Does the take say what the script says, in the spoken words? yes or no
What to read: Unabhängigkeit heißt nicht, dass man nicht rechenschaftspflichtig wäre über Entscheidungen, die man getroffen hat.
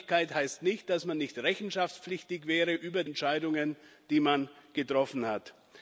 yes